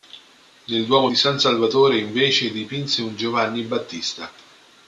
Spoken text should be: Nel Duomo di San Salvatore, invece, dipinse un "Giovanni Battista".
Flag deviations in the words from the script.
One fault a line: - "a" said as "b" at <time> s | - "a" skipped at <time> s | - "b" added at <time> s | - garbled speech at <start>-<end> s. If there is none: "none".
none